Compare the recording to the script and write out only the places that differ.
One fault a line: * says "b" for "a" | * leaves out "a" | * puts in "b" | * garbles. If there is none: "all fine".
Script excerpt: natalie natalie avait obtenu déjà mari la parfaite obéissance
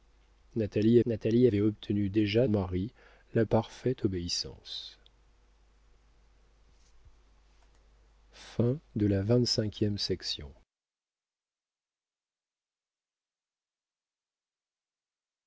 all fine